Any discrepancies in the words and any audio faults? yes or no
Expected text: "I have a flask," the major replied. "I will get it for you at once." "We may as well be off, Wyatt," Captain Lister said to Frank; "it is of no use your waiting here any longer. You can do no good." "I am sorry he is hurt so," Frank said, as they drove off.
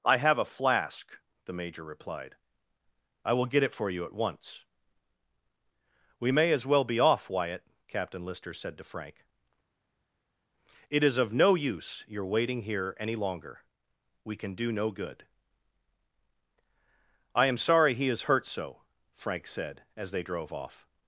yes